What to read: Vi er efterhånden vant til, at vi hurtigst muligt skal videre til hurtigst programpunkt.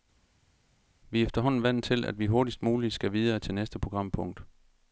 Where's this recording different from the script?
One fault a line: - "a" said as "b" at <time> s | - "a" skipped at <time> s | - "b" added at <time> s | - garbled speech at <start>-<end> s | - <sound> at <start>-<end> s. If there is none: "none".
- "hurtigst" said as "næste" at 3.5 s